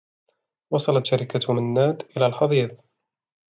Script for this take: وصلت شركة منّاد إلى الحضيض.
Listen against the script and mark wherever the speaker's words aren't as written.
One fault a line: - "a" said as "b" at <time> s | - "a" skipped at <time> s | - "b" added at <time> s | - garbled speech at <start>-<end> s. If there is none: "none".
none